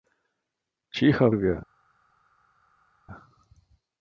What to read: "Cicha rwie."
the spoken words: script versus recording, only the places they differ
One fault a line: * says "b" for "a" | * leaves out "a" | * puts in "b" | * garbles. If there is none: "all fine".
all fine